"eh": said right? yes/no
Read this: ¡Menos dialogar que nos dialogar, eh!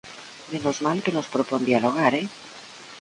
yes